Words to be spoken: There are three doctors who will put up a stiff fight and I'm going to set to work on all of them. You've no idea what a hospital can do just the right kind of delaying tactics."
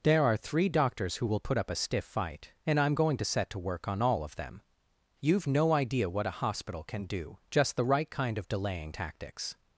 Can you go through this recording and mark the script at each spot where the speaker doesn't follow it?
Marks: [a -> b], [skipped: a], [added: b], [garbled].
There are three doctors who will put up a stiff fight and I'm going to set to work on all of them. You've no idea what a hospital can do just the right kind of delaying tactics."